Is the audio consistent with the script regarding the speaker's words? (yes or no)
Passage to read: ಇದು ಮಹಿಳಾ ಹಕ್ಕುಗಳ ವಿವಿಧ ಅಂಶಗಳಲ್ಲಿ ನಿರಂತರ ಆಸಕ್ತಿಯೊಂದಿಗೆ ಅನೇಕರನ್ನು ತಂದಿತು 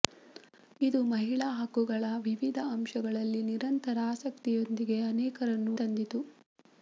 yes